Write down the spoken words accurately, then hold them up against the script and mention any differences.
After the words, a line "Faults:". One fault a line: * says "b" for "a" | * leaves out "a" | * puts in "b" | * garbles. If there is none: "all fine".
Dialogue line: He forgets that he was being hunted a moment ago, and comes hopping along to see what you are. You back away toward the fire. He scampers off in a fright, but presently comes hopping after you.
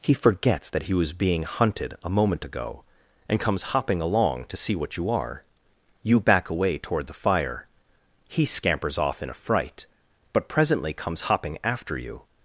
He forgets that he was being hunted a moment ago, and comes hopping along to see what you are. You back away toward the fire. He scampers off in a fright, but presently comes hopping after you.
Faults:
all fine